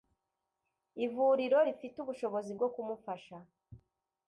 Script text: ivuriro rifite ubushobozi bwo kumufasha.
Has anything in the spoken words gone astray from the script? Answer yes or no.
no